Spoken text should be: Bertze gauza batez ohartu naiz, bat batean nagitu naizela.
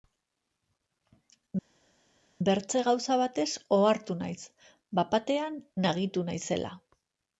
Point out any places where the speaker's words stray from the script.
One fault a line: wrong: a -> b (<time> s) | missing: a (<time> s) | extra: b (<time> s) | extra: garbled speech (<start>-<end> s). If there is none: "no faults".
no faults